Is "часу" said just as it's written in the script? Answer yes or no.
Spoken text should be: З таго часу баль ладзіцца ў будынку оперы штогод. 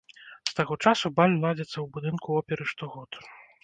yes